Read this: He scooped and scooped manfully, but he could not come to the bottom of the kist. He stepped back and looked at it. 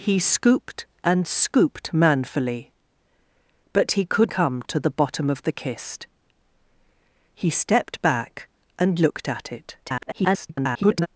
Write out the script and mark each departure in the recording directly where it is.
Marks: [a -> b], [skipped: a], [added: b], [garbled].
He scooped and scooped manfully, but he could [skipped: not] come to the bottom of the kist. He stepped back and looked at it. [garbled]